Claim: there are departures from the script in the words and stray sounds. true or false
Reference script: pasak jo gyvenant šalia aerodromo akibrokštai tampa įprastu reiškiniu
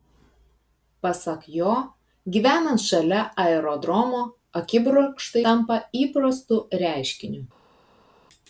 false